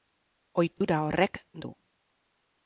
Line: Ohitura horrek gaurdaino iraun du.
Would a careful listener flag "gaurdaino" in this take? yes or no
yes